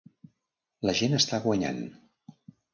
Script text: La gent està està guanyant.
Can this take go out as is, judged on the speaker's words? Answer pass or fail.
fail